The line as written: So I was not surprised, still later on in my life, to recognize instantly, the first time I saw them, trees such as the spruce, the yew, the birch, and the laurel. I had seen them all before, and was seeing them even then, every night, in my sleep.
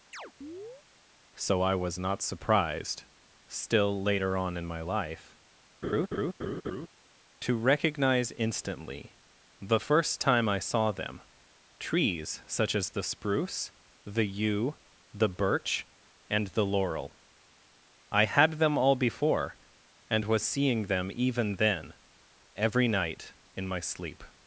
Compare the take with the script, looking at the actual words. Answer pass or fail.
fail